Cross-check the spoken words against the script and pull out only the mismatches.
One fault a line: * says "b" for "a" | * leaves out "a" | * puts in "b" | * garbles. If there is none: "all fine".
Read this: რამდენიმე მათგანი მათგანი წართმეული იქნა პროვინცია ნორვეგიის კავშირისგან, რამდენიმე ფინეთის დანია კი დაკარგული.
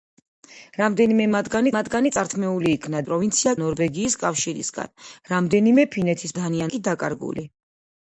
all fine